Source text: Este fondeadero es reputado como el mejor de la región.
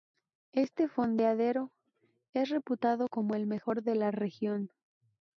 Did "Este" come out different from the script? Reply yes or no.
no